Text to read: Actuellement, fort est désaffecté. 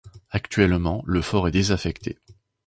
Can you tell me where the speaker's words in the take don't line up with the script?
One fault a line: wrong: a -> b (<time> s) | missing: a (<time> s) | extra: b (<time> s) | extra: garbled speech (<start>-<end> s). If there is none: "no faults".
extra: le (1.1 s)